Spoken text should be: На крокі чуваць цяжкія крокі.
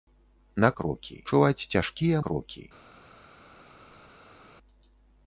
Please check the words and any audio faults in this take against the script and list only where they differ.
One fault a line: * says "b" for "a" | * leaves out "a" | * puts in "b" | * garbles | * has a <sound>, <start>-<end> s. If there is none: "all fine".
all fine